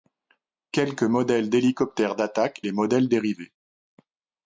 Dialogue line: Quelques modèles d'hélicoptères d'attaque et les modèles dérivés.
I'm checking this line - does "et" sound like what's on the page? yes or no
no